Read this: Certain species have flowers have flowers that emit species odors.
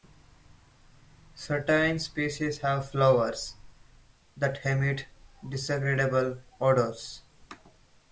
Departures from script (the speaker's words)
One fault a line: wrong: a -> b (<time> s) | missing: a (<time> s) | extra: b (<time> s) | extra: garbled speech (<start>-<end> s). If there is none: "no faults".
missing: have flowers (3.5 s)
wrong: species -> disagreeable (5.5 s)